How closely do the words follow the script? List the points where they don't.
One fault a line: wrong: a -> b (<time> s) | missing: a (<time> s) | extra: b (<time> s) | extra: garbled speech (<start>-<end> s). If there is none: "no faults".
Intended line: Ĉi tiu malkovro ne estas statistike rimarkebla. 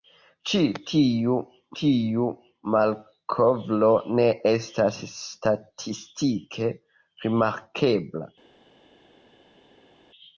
extra: tiu (1.8 s)